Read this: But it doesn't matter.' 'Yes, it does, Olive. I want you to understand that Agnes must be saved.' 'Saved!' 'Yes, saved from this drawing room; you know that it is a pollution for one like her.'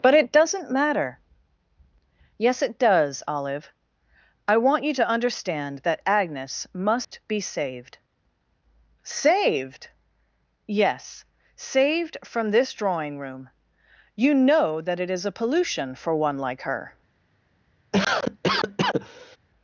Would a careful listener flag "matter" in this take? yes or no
no